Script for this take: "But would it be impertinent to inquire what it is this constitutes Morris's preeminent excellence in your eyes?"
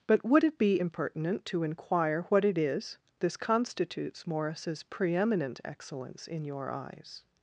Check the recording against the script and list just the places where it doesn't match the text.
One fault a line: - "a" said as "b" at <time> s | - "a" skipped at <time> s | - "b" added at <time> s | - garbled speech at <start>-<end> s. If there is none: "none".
none